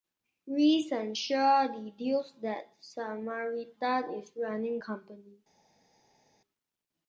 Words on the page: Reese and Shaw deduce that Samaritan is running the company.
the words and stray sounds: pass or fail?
fail